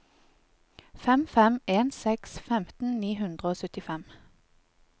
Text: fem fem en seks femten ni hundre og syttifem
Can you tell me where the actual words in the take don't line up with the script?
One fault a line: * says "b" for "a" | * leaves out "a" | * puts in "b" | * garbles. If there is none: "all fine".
all fine